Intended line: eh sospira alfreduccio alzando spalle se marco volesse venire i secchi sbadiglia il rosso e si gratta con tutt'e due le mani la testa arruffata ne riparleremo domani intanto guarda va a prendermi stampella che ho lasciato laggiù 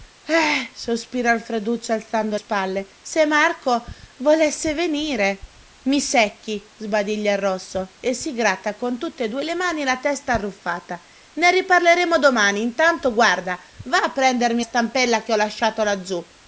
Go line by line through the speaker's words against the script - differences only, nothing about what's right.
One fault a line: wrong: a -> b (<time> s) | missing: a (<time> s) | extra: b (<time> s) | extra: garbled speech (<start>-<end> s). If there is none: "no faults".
no faults